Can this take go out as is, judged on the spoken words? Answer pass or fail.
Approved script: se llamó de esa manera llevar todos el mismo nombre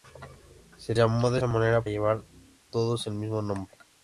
pass